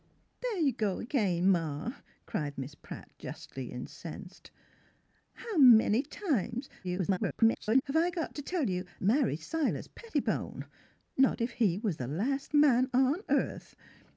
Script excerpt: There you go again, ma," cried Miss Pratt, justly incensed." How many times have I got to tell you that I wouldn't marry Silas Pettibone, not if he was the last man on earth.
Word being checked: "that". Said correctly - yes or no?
no